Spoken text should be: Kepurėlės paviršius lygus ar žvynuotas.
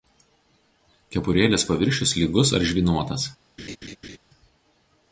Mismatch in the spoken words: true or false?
false